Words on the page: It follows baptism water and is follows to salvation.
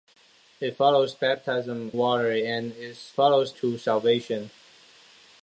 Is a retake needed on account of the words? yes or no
no